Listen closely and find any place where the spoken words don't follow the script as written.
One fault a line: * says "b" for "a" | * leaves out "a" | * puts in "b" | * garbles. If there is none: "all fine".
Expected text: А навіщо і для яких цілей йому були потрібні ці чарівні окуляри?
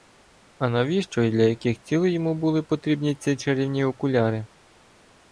all fine